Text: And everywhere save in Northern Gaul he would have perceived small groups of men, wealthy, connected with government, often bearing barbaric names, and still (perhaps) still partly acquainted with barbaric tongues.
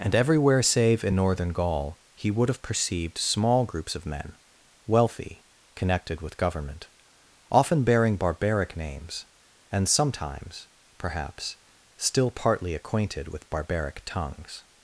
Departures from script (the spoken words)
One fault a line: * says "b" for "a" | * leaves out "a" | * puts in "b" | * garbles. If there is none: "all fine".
* says "sometimes" for "still"